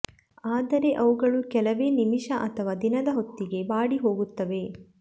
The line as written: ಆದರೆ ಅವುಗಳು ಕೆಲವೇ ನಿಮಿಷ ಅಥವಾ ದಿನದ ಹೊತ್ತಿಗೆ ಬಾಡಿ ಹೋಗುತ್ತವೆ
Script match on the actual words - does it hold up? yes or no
yes